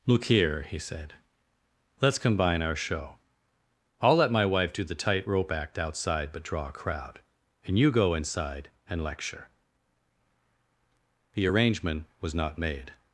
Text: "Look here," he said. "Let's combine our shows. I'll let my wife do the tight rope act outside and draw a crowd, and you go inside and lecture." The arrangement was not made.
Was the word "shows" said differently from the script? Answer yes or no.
yes